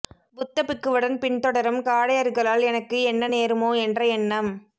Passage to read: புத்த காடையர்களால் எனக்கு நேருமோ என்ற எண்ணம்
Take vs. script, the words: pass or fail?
fail